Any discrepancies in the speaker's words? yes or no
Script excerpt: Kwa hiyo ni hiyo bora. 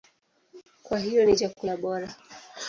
yes